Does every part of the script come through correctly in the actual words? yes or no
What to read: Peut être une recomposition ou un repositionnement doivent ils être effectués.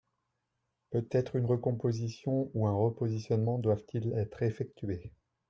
yes